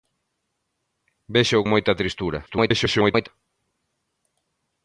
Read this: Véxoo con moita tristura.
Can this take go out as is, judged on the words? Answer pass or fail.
fail